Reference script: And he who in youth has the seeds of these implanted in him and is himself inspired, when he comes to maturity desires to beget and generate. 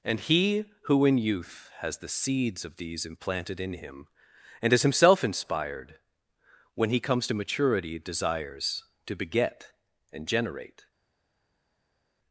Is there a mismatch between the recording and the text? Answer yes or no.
no